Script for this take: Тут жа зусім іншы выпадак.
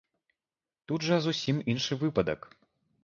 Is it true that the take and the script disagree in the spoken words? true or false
false